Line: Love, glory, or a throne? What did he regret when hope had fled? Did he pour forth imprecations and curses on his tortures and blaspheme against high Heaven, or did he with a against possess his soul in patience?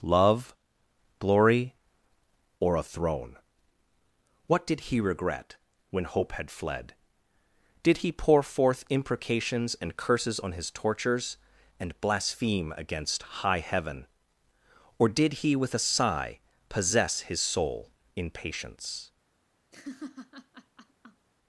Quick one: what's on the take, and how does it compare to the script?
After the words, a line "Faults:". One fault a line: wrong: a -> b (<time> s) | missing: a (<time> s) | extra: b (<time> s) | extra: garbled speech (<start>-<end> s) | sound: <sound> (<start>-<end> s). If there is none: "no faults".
Love, glory, or a throne? What did he regret when hope had fled? Did he pour forth imprecations and curses on his tortures and blaspheme against high Heaven, or did he with a sigh possess his soul in patience?
Faults:
wrong: against -> sigh (15.8 s)
sound: laugh (19.7-21.3 s)